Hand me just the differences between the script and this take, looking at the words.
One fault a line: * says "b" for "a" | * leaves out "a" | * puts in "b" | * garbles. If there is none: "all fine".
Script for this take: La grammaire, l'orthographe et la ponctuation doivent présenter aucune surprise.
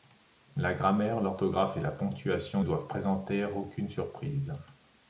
all fine